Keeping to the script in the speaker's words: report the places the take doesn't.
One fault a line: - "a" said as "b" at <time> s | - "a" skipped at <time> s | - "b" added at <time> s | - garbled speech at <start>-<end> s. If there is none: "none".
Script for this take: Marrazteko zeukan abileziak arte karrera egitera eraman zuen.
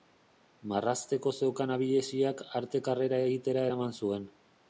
none